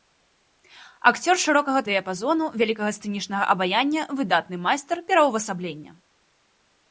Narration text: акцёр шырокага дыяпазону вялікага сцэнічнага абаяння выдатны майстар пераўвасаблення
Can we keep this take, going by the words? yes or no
yes